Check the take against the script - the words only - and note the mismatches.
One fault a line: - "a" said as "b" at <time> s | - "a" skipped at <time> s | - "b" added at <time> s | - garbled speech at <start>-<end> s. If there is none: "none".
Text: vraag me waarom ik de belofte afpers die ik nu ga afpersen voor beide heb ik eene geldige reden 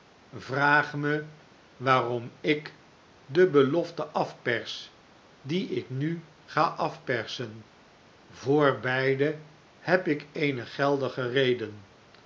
none